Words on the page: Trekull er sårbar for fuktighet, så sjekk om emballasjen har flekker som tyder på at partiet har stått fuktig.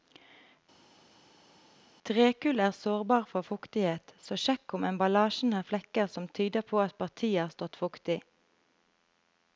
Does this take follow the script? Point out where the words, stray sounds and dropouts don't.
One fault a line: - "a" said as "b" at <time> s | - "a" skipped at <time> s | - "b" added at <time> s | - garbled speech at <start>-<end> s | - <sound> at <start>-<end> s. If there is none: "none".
none